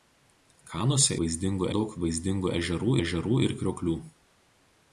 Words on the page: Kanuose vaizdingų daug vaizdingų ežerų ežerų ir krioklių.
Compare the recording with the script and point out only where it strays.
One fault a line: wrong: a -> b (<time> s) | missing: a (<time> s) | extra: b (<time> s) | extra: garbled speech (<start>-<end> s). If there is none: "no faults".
no faults